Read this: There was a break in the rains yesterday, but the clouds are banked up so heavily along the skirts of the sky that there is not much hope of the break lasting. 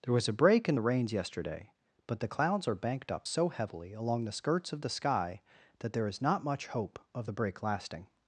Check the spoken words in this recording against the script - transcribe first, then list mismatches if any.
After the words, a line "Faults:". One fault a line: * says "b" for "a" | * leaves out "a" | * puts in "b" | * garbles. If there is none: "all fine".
There was a break in the rains yesterday, but the clouds are banked up so heavily along the skirts of the sky that there is not much hope of the break lasting.
Faults:
all fine